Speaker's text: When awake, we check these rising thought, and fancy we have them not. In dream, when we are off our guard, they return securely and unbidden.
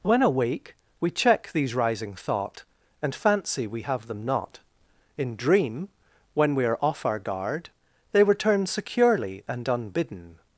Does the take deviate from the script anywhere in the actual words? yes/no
no